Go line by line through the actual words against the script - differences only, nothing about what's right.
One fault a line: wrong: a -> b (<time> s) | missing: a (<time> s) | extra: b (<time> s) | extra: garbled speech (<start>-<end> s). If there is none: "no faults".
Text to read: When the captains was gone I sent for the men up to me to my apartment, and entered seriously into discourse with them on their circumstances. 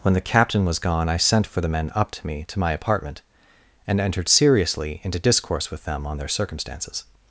wrong: captains -> captain (0.2 s)